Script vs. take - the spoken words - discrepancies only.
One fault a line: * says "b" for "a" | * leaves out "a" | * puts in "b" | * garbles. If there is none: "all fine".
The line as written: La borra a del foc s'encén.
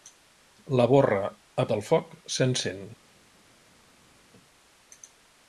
all fine